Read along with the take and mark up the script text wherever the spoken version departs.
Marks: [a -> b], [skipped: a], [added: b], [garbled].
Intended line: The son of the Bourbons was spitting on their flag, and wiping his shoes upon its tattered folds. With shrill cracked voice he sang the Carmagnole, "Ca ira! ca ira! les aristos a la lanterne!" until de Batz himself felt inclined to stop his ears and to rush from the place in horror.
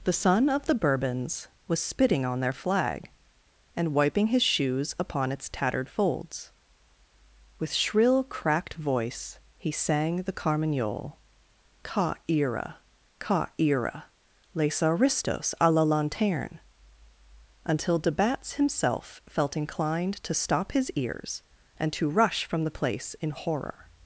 The son of the Bourbons was spitting on their flag, and wiping his shoes upon its tattered folds. With shrill cracked voice he sang the Carmagnole, "Ca ira! ca ira! les aristos a la lanterne!" until de Batz himself felt inclined to stop his ears and to rush from the place in horror.